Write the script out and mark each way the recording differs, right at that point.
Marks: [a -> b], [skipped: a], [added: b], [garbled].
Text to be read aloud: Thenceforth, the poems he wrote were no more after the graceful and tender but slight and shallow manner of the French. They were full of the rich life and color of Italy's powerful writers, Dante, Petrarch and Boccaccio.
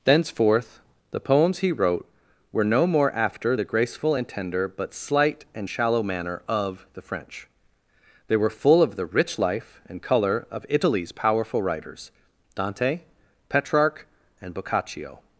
Thenceforth, the poems he wrote were no more after the graceful and tender but slight and shallow manner of the French. They were full of the rich life and color of Italy's powerful writers, Dante, Petrarch and Boccaccio.